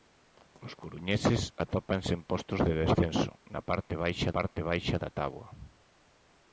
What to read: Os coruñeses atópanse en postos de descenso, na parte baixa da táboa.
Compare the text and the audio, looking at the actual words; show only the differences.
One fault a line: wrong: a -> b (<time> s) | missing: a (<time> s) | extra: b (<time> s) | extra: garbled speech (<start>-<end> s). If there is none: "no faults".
extra: parte baixa (4.4 s)